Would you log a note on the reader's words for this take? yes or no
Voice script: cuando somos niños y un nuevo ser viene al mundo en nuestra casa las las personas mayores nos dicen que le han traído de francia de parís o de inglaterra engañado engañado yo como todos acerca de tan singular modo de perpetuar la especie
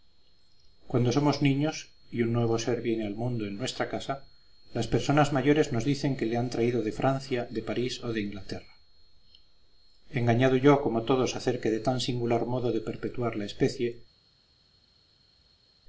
yes